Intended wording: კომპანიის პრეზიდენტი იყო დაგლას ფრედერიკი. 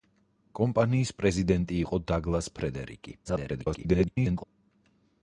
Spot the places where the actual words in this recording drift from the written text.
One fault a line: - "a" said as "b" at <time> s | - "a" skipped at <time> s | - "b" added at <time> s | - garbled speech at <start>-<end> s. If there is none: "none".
- garbled speech at 3.2-4.4 s